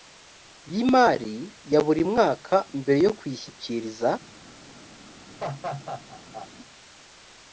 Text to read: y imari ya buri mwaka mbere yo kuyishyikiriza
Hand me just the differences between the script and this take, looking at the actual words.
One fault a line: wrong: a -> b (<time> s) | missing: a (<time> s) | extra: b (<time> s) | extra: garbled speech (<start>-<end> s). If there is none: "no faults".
no faults